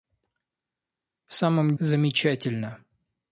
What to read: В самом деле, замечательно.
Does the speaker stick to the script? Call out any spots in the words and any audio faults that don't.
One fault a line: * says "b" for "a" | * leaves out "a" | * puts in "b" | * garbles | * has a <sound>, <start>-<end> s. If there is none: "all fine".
* leaves out "деле"